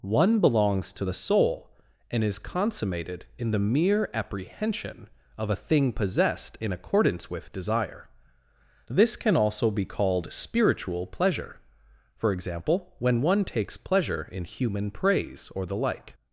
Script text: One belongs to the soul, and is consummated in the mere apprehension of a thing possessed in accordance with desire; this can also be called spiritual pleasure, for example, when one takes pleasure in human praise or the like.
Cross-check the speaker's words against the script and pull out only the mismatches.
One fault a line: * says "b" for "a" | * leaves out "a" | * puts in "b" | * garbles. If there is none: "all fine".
all fine